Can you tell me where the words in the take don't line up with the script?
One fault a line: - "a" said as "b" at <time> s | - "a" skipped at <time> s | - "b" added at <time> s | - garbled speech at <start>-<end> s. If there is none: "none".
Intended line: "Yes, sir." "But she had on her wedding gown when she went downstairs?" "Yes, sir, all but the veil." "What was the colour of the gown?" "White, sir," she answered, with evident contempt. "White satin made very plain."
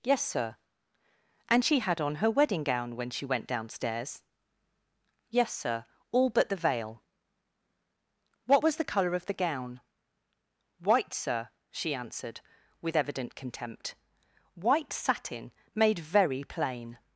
- "But" said as "And" at 1.5 s